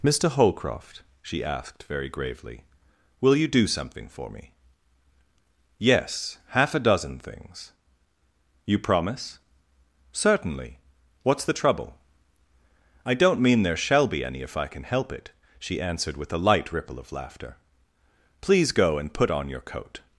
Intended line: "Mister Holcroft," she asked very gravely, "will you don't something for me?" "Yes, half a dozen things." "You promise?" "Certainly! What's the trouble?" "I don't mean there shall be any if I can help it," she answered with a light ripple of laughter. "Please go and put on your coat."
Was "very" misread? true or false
false